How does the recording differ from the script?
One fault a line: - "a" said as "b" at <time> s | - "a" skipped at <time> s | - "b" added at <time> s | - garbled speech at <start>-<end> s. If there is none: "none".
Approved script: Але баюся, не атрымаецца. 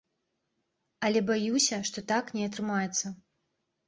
- "што так" added at 1.9 s